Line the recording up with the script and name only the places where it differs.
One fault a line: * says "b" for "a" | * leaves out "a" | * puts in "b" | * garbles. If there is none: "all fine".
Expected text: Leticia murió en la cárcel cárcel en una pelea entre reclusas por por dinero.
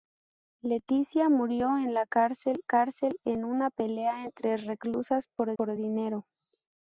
all fine